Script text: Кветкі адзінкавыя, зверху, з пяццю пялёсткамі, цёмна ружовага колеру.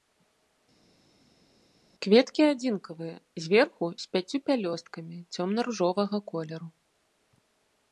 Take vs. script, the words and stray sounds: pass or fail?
pass